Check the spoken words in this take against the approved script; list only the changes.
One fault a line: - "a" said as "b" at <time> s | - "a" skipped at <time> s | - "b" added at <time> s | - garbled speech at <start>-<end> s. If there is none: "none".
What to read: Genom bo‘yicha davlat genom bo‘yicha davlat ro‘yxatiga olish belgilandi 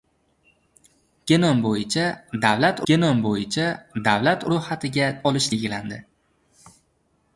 none